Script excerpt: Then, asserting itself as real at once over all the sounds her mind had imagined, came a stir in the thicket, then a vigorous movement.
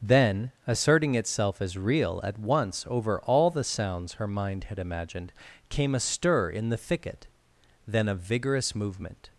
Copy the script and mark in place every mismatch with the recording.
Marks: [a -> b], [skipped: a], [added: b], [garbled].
Then, asserting itself as real at once over all the sounds her mind had imagined, came a stir in the thicket, then a vigorous movement.